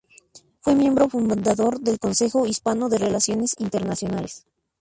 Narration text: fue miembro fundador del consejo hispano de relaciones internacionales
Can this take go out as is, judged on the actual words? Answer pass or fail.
pass